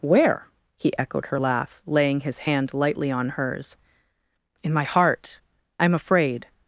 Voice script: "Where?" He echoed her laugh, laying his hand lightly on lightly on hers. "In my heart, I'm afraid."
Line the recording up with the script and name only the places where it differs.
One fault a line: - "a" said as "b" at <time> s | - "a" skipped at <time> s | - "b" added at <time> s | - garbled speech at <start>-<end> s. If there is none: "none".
- "lightly on" skipped at 3.3 s